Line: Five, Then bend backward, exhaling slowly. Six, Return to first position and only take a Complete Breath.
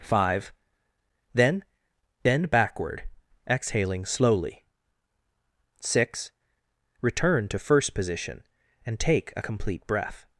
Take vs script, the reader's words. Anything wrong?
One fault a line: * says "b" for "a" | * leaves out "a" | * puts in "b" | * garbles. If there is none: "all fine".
* leaves out "only"